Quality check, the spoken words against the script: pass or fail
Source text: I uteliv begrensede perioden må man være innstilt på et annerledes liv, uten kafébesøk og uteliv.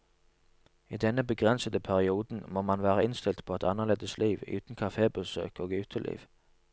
fail